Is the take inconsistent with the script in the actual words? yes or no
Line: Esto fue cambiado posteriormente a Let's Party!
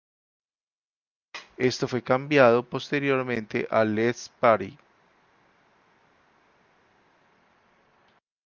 no